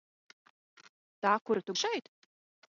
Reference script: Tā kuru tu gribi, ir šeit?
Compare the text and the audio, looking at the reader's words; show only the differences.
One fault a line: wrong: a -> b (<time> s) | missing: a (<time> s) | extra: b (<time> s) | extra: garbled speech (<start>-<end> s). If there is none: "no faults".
missing: gribi ir (1.8 s)